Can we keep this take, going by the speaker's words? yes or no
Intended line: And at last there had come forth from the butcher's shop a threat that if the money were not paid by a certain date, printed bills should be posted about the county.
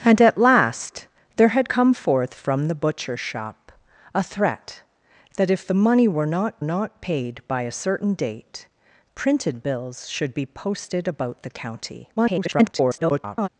no